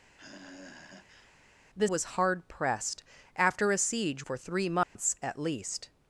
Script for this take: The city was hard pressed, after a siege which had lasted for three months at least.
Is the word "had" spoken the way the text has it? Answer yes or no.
no